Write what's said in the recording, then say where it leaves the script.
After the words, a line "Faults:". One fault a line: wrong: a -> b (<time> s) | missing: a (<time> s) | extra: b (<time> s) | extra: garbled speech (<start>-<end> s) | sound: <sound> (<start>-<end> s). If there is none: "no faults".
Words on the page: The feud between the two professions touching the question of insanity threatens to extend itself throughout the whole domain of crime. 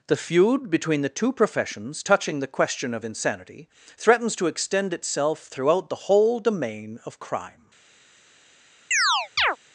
The feud between the two professions touching the question of insanity threatens to extend itself throughout the whole domain of crime.
Faults:
sound: chirp (8.9-9.6 s)